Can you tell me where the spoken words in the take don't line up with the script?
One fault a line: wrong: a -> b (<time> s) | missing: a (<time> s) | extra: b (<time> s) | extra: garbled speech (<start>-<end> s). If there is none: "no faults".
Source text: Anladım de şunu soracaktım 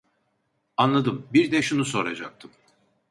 extra: bir (1.3 s)